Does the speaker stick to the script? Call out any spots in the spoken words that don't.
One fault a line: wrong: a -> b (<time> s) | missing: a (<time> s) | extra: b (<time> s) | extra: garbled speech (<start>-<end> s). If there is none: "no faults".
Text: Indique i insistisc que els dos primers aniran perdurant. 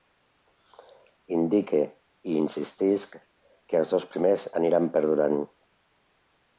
no faults